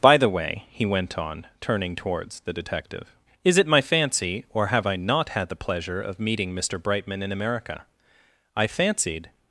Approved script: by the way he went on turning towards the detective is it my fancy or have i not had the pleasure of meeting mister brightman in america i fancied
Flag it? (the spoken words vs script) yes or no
no